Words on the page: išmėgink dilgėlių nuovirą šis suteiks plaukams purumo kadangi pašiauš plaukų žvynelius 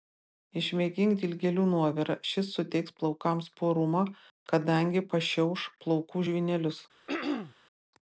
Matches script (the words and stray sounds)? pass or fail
fail